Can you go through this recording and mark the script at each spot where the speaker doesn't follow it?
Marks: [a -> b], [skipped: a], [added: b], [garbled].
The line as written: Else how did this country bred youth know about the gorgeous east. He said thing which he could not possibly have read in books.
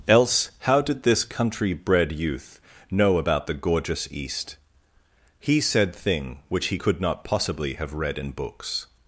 Else how did this country bred youth know about the gorgeous east. He said thing which he could not possibly have read in books.